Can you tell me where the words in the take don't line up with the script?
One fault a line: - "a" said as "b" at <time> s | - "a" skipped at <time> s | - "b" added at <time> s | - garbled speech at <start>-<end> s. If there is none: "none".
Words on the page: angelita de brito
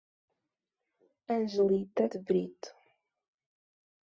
none